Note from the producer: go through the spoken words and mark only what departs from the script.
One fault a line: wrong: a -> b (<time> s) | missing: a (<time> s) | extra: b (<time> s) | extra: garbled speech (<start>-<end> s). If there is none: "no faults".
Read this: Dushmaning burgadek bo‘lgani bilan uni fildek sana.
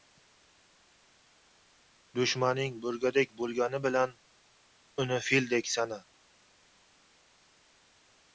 no faults